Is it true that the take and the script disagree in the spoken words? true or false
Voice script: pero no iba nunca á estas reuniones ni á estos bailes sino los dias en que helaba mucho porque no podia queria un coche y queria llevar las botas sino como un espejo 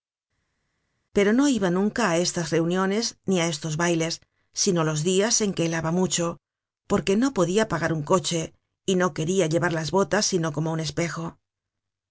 true